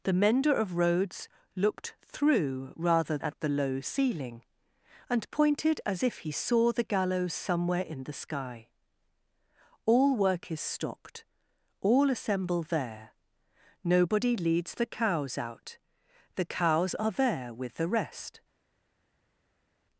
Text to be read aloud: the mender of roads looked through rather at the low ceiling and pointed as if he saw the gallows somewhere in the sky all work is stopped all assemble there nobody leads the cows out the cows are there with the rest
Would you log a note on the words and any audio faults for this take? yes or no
no